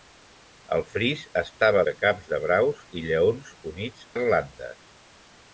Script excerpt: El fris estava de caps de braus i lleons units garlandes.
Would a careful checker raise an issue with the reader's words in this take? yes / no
no